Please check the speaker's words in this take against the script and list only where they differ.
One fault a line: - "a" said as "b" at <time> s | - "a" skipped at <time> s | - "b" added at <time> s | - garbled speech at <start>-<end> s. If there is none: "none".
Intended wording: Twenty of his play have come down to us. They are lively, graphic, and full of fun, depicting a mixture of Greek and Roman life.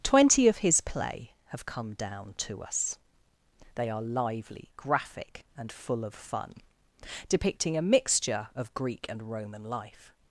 none